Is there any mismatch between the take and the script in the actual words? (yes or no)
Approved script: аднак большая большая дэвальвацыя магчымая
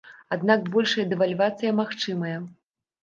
yes